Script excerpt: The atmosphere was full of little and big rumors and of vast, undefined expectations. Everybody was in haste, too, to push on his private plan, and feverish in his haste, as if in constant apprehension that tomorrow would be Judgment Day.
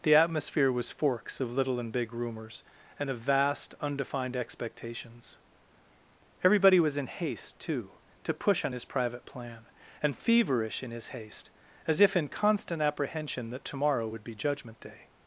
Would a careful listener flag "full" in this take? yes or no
yes